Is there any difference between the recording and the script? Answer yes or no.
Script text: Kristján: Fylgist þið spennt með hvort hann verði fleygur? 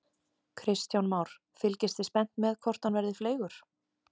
yes